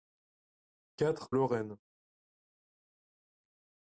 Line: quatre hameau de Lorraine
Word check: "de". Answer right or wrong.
wrong